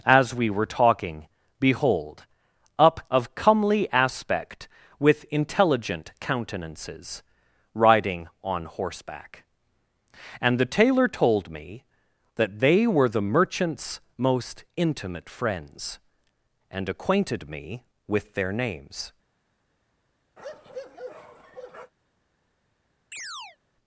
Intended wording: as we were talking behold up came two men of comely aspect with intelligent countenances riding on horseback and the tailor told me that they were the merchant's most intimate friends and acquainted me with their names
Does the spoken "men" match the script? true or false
false